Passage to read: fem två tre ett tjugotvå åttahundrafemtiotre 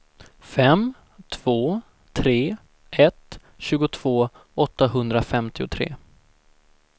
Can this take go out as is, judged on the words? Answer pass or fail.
pass